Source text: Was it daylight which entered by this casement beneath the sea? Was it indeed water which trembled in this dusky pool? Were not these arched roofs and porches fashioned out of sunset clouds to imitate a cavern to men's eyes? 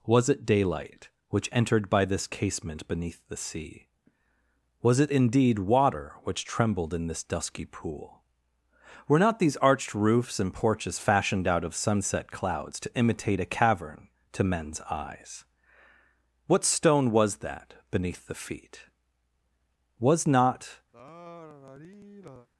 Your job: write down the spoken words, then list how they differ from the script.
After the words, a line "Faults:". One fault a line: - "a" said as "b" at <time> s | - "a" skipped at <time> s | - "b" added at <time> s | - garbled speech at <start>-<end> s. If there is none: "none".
Was it daylight which entered by this casement beneath the sea? Was it indeed water which trembled in this dusky pool? Were not these arched roofs and porches fashioned out of sunset clouds to imitate a cavern to men's eyes? What stone was that beneath the feet? Was not
Faults:
- "What stone was that beneath the feet Was not" added at 16.5 s